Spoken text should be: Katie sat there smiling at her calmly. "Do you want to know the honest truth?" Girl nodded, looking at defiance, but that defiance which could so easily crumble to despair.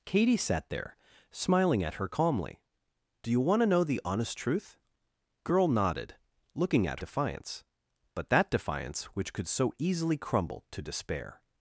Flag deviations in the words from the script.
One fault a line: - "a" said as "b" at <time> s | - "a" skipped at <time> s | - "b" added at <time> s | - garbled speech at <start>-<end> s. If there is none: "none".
none